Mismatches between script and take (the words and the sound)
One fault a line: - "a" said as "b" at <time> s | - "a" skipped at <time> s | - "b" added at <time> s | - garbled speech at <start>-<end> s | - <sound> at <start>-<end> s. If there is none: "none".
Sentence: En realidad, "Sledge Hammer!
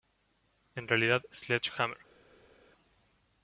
none